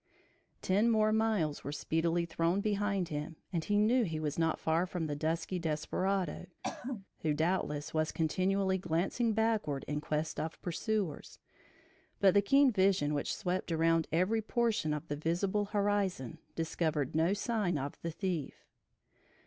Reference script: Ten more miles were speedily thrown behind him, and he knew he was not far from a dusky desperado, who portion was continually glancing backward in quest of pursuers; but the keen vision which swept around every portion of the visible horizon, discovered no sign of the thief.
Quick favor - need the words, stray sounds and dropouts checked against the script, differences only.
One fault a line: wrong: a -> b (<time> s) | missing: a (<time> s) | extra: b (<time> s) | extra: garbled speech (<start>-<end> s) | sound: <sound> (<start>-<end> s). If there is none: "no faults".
wrong: a -> the (5.0 s)
sound: throat clearing (6.6-7.1 s)
wrong: portion -> doubtless (7.3 s)